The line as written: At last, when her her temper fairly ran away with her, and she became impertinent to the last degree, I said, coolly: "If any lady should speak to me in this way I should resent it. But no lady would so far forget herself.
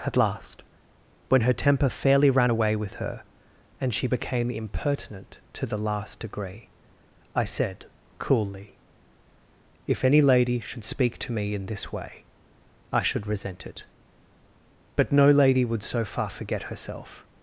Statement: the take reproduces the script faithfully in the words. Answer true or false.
false